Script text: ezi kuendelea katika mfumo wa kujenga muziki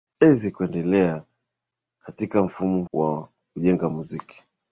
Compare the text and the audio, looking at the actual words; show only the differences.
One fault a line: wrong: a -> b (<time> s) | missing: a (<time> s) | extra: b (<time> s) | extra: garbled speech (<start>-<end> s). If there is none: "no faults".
no faults